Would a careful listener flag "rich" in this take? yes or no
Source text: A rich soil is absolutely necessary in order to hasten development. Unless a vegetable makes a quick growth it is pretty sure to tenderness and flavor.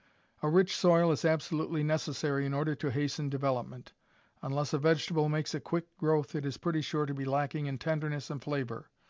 no